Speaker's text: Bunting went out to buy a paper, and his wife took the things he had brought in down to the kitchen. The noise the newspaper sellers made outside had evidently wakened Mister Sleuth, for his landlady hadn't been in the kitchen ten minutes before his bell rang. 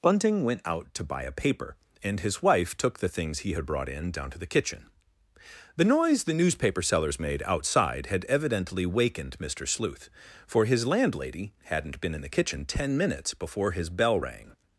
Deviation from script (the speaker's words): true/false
false